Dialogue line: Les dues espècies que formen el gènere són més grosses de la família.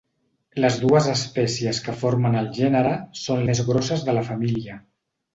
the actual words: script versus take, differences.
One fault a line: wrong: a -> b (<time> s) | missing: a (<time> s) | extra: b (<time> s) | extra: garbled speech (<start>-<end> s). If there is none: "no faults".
no faults